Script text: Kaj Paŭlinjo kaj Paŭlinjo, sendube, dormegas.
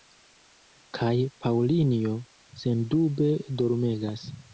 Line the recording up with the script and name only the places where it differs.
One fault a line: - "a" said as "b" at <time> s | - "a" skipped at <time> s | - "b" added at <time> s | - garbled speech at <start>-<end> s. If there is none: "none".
- "kaj Paŭlinjo" skipped at 2.1 s